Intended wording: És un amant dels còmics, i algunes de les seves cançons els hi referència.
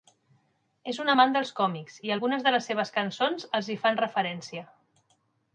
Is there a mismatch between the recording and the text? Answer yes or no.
yes